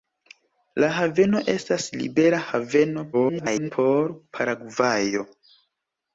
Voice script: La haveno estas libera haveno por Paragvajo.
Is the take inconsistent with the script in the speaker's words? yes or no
yes